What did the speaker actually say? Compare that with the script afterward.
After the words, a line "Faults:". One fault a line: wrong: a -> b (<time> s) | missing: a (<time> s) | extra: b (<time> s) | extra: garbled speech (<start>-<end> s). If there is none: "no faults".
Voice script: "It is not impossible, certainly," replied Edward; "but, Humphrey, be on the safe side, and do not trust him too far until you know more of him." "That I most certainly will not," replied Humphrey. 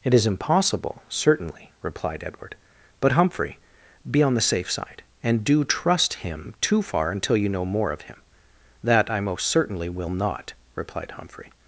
"It is impossible, certainly," replied Edward; "but, Humphrey, be on the safe side, and do trust him too far until you know more of him." "That I most certainly will not," replied Humphrey.
Faults:
missing: not (0.2 s)
missing: not (5.6 s)